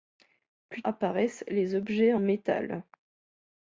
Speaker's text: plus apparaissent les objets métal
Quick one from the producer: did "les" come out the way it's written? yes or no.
yes